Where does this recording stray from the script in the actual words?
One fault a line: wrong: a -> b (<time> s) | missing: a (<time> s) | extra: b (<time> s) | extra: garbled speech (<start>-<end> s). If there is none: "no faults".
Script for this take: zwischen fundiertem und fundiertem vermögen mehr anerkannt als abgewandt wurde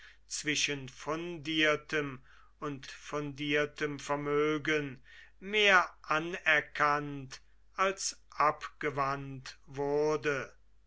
no faults